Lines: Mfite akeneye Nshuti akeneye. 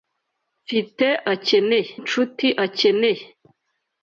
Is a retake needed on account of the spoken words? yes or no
no